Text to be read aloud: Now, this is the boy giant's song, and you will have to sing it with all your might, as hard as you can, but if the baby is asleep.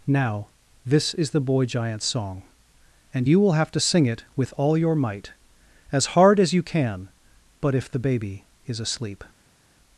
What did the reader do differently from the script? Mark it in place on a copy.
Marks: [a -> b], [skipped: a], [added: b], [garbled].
Now, this is the boy giant's song, and you will have to sing it with all your might, as hard as you can, but if the baby is asleep.